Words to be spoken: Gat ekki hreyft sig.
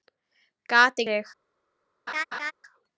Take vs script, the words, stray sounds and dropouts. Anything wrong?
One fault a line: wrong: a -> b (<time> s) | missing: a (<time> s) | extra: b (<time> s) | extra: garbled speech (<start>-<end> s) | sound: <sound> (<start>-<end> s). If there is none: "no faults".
missing: ekki hreyft (1.0 s)
sound: laugh (2.1-2.5 s)